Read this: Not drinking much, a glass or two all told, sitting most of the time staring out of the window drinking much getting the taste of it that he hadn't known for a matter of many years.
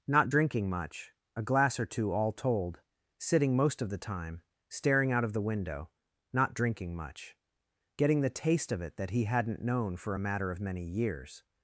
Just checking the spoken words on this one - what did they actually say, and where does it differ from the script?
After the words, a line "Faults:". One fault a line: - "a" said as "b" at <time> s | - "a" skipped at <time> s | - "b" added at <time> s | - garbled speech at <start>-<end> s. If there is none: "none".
Not drinking much, a glass or two all told, sitting most of the time staring out of the window not drinking much getting the taste of it that he hadn't known for a matter of many years.
Faults:
- "not" added at 6.3 s